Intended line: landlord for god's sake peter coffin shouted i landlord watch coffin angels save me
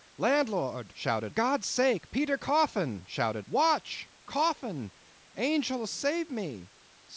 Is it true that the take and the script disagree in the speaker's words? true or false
true